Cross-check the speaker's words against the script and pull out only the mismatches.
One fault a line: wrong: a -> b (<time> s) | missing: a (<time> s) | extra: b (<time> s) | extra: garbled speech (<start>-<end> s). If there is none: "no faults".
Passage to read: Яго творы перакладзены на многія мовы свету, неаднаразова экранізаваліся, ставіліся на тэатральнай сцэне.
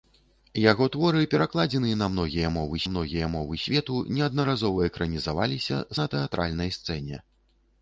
extra: многія мовы (2.9 s)
missing: ставіліся (5.8 s)